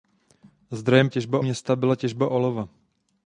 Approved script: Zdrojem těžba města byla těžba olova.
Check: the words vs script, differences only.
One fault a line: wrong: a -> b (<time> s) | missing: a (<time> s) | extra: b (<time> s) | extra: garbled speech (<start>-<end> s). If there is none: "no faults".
no faults